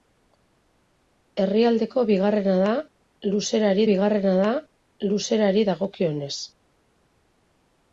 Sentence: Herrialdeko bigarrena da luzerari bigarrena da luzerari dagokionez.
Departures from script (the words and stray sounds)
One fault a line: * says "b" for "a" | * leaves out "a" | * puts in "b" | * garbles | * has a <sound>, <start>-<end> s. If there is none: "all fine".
all fine